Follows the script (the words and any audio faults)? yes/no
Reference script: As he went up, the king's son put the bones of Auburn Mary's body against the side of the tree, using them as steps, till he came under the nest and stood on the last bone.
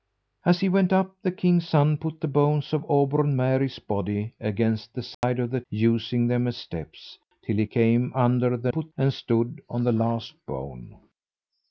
no